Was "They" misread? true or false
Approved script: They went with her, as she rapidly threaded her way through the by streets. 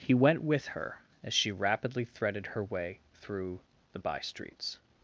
true